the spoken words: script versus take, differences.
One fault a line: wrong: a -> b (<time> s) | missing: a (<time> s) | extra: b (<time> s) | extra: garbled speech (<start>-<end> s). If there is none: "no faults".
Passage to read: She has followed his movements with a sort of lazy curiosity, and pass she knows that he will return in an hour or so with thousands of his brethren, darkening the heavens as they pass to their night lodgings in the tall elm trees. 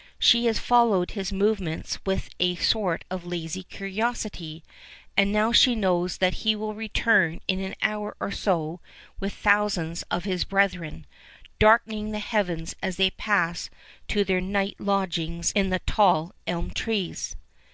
wrong: pass -> now (5.3 s)